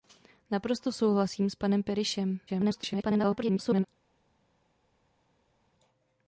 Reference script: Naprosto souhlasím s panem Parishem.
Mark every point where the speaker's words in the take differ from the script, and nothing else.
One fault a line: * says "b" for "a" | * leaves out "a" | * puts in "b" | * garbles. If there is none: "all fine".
* garbles